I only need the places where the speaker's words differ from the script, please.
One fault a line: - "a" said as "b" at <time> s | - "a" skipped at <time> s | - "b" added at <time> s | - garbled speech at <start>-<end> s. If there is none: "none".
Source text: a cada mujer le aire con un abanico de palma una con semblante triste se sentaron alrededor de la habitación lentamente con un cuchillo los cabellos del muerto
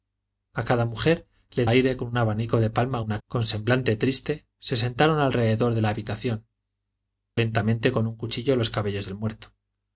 none